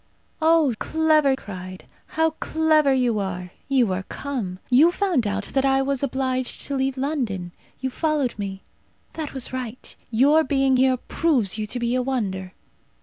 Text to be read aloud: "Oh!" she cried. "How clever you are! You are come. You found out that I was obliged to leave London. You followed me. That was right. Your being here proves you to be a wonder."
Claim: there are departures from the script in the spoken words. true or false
true